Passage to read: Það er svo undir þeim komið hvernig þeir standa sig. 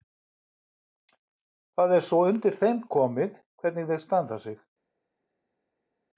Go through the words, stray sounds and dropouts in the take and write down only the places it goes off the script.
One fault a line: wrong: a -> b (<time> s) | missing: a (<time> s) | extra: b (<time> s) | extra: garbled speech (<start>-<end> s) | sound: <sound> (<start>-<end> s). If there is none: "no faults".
no faults